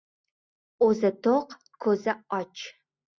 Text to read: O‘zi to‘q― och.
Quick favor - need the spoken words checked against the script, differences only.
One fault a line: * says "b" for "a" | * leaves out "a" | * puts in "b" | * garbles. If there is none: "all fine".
* puts in "ko‘zi"